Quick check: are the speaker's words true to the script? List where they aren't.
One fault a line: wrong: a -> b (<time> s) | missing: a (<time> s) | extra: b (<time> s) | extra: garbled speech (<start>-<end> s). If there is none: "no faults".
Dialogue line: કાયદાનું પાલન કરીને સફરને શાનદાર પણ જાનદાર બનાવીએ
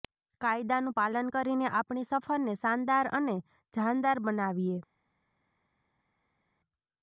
extra: આપણી (1.7 s)
wrong: પણ -> અને (3.1 s)